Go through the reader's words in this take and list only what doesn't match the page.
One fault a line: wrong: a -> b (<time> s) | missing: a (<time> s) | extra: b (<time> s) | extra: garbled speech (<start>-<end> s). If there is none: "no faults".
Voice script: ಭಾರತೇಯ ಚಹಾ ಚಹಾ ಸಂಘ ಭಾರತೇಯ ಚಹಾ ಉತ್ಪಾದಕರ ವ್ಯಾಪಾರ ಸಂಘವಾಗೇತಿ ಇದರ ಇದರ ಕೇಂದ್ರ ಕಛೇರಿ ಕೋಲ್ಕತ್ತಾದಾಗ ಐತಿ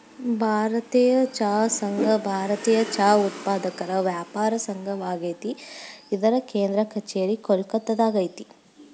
missing: ಚಹಾ (1.5 s)
missing: ಇದರ (6.3 s)